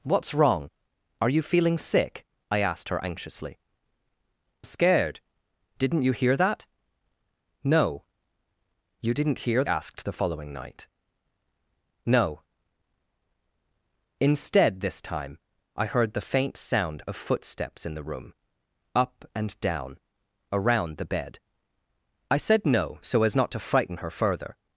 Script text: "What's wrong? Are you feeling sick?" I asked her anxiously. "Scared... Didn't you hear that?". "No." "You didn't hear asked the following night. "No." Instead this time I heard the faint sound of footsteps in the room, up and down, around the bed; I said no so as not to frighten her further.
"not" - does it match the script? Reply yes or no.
yes